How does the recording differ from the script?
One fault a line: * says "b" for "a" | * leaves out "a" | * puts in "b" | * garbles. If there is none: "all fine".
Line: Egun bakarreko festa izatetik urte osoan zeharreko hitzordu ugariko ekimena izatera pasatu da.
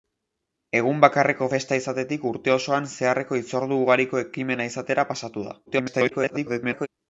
* garbles